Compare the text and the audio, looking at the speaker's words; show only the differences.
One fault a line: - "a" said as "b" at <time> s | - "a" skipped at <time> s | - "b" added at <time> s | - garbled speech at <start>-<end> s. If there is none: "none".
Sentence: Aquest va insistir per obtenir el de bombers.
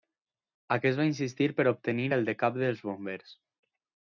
- "cap dels" added at 2.5 s